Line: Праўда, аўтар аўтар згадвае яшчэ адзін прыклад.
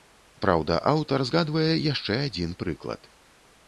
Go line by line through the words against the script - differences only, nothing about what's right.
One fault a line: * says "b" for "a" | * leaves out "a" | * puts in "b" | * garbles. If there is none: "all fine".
* leaves out "аўтар"